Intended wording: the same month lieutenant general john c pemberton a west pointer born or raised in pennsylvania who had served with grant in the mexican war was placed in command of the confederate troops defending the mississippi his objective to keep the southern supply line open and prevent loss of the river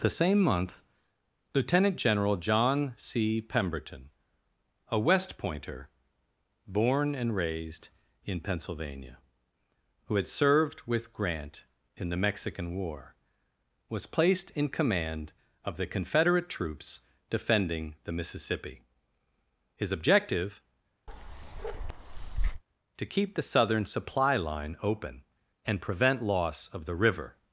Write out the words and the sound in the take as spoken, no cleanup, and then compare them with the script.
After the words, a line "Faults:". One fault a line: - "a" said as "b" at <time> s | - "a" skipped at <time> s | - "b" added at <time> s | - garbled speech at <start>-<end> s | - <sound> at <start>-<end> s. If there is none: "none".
the same month lieutenant general john c pemberton a west pointer born and raised in pennsylvania who had served with grant in the mexican war was placed in command of the confederate troops defending the mississippi his objective to keep the southern supply line open and prevent loss of the river
Faults:
- "or" said as "and" at 7.1 s
- bark at 21.1-22.6 s